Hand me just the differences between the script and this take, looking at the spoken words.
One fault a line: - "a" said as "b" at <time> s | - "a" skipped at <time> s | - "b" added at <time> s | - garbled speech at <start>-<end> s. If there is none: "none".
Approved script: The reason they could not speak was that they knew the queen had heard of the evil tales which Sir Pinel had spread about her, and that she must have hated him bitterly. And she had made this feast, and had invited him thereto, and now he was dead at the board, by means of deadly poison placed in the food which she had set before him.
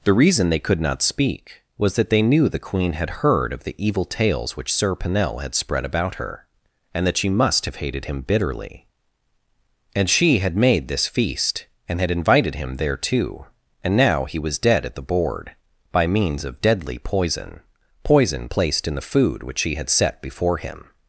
- "poison" added at 18.0 s